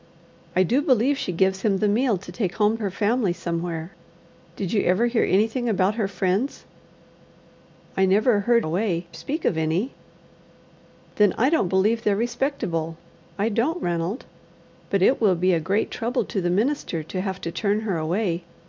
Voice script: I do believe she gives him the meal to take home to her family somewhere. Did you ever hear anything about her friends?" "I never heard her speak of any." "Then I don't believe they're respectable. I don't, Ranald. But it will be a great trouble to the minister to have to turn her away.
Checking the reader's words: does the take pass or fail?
fail